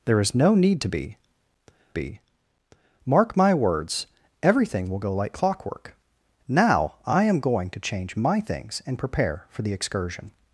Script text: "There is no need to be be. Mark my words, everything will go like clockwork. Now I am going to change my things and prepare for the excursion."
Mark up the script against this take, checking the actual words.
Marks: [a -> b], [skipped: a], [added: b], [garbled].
"There is no need to be be. Mark my words, everything will go like clockwork. Now I am going to change my things and prepare for the excursion."